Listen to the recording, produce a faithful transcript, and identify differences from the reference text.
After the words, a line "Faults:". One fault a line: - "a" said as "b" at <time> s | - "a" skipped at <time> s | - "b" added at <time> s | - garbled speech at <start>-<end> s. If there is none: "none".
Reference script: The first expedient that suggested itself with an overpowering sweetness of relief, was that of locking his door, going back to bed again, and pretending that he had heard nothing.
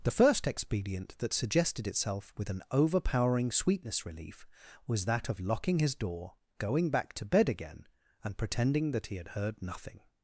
The first expedient that suggested itself with an overpowering sweetness relief, was that of locking his door, going back to bed again, and pretending that he had heard nothing.
Faults:
- "of" skipped at 4.1 s